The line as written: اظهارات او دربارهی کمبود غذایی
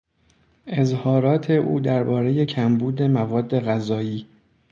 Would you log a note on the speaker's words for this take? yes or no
yes